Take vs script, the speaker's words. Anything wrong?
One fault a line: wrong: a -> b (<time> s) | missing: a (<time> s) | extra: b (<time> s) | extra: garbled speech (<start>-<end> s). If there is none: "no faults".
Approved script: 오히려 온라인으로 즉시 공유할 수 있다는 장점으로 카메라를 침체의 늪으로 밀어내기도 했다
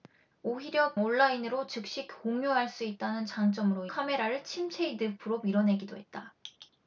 no faults